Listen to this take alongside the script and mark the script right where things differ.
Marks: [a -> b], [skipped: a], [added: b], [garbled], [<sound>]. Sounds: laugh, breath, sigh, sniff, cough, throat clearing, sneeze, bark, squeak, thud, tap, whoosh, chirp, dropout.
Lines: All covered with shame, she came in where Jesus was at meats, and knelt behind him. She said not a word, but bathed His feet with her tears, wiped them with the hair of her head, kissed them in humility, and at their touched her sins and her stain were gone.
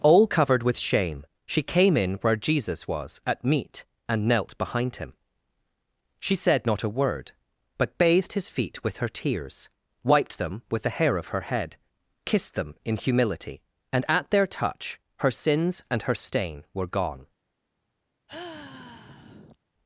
All covered with shame, she came in where Jesus was at [meats, -> meat] and knelt behind him. She said not a word, but bathed His feet with her tears, wiped them with the hair of her head, kissed them in humility, and at their [touched -> touch] her sins and her stain were gone. [sigh]